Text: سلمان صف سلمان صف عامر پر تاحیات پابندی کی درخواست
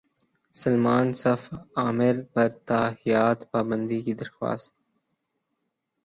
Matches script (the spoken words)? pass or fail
fail